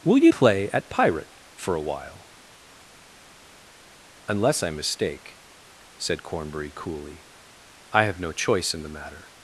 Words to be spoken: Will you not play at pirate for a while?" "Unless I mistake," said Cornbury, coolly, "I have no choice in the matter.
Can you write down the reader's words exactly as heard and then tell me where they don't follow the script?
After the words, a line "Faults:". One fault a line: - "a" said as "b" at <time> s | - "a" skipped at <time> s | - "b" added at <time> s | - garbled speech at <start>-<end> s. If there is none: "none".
Will you play at pirate for a while?" "Unless I mistake," said Cornbury, coolly, "I have no choice in the matter.
Faults:
- "not" skipped at 0.3 s